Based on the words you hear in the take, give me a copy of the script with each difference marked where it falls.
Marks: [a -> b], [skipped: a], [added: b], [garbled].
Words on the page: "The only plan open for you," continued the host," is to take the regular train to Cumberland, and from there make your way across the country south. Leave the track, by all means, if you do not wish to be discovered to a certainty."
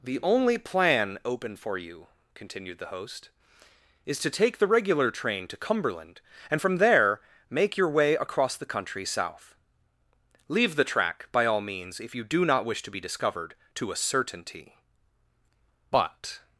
"The only plan open for you," continued the host," is to take the regular train to Cumberland, and from there make your way across the country south. Leave the track, by all means, if you do not wish to be discovered to a certainty." [added: But]